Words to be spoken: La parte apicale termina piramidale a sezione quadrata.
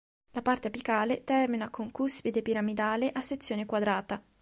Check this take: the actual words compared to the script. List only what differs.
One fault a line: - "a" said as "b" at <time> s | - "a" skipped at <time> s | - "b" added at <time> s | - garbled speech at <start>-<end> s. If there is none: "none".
- "con cuspide" added at 1.7 s